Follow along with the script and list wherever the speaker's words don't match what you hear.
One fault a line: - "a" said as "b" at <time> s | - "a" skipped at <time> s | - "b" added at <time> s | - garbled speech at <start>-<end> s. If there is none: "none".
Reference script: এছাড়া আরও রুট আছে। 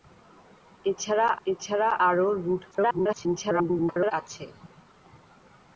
- "এছাড়া" added at 1.5 s
- garbled speech at 2.7-4.1 s